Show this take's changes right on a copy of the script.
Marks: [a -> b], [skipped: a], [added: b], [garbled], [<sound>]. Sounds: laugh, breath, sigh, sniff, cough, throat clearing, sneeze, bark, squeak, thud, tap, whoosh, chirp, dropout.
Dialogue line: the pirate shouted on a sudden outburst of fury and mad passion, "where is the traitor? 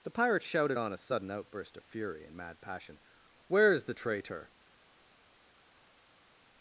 the pirate shouted on a sudden outburst of fury and mad passion, "where is the traitor?